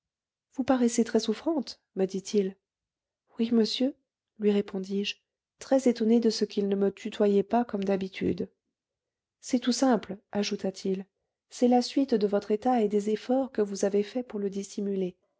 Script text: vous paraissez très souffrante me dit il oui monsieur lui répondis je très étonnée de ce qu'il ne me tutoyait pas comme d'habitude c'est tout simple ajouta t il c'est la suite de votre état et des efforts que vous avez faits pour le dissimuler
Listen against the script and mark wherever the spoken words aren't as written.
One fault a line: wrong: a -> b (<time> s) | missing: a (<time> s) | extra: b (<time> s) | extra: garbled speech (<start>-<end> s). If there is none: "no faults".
no faults